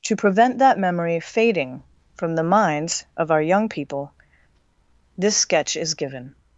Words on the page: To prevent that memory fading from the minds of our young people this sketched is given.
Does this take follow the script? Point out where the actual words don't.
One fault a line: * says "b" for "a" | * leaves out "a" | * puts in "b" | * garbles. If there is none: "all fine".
* says "sketch" for "sketched"